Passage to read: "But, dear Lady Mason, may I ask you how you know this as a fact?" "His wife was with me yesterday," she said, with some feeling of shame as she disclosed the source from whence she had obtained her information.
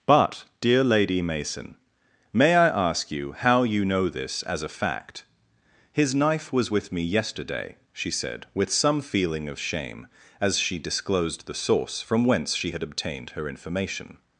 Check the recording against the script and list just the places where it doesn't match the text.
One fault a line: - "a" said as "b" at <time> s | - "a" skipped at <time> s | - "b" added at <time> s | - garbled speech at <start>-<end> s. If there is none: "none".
- "wife" said as "knife" at 6.2 s